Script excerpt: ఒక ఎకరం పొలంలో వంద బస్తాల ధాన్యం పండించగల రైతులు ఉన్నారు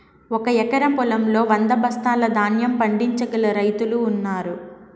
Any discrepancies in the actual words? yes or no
no